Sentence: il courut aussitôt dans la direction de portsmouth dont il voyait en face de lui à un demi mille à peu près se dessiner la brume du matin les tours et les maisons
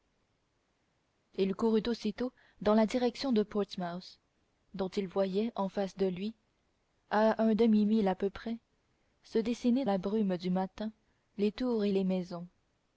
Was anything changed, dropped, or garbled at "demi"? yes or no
no